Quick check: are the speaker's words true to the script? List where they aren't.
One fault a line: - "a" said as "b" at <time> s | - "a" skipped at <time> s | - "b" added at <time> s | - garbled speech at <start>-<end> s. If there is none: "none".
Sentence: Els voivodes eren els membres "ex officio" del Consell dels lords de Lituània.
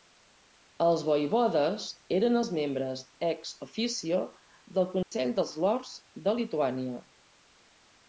none